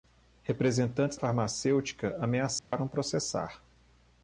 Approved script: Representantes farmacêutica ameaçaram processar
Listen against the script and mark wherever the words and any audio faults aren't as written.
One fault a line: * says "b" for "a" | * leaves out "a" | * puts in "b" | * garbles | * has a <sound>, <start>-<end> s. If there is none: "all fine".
* has a dropout, 2.6-2.7 s